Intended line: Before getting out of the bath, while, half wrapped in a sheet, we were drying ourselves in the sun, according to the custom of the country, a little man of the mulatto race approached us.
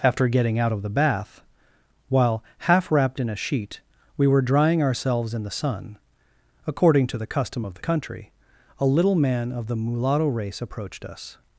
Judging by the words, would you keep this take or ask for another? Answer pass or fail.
fail